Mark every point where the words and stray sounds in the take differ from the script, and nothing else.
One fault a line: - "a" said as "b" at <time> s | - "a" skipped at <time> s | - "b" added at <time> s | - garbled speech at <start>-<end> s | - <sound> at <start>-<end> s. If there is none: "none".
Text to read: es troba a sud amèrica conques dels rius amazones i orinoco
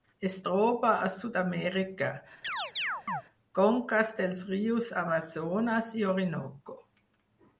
- chirp at 2.4-3.2 s